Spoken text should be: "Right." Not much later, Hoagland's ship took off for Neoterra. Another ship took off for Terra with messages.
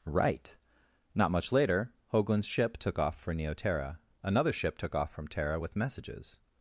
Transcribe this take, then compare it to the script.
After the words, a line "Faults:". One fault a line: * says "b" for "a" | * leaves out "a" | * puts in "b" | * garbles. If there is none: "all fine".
"Right." Not much later, Hoagland's ship took off for Neoterra. Another ship took off from Terra with messages.
Faults:
* says "from" for "for"